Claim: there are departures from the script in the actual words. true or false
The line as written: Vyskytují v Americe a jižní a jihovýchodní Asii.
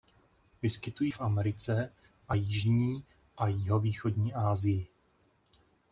false